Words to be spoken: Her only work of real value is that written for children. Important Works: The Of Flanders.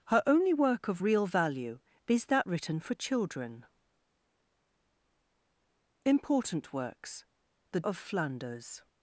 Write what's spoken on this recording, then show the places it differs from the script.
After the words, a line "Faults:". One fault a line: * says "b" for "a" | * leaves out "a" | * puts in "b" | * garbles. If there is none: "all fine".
Her only work of real value is that written for children. Important Works: The Of Flanders.
Faults:
all fine